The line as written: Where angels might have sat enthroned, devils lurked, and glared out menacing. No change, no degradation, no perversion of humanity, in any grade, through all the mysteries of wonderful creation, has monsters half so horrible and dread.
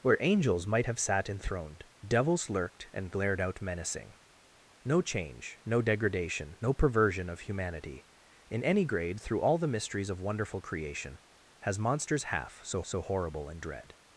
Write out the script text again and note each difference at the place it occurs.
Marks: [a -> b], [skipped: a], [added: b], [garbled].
Where angels might have sat enthroned, devils lurked, and glared out menacing. No change, no degradation, no perversion of humanity, in any grade, through all the mysteries of wonderful creation, has monsters half so [added: so] horrible and dread.